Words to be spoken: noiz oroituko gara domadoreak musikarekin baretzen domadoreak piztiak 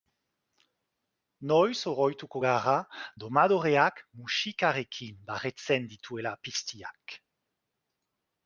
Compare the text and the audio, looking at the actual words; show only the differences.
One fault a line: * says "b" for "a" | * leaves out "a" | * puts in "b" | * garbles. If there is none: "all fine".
* says "dituela" for "domadoreak"